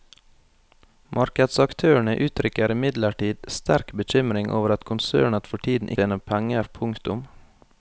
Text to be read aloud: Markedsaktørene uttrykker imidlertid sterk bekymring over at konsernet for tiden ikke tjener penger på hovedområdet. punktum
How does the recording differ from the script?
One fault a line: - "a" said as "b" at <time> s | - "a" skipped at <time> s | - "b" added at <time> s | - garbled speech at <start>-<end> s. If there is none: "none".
- "ikke" skipped at 5.9 s
- "på hovedområdet" skipped at 6.7 s